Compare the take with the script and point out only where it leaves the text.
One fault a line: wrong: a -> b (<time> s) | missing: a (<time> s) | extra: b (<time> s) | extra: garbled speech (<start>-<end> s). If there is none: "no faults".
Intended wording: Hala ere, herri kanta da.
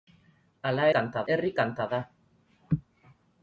wrong: ere -> kanta (1.0 s)